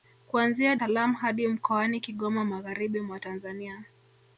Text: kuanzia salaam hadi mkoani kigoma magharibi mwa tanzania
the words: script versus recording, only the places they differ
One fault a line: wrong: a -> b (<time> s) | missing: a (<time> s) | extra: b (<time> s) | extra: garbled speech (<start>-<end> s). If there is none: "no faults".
no faults